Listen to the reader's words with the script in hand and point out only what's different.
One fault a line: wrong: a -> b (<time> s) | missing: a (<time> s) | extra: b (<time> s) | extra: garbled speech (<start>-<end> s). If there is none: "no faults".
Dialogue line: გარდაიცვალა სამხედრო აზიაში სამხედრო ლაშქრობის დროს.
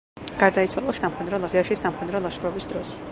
no faults